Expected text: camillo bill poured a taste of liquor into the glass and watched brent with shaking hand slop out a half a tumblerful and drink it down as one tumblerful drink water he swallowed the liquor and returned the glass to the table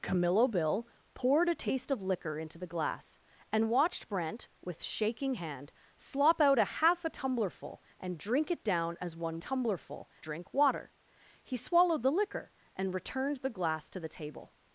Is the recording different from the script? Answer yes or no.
no